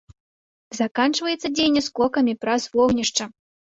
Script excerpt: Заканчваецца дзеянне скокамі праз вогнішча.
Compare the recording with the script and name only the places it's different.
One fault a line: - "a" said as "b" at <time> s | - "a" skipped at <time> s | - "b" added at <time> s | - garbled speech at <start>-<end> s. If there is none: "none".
none